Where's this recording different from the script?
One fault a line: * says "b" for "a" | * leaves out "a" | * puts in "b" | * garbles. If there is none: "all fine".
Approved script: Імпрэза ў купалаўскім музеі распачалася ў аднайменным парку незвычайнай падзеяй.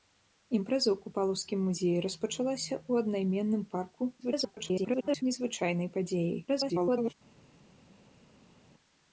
* garbles
* garbles